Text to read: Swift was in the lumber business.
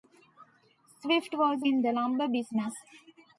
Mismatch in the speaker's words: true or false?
false